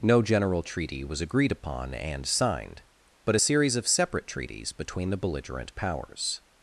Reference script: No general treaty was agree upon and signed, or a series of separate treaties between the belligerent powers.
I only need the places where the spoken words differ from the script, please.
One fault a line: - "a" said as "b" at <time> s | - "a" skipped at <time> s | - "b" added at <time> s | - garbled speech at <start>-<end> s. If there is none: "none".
- "agree" said as "agreed" at 1.2 s
- "or" said as "but" at 3.2 s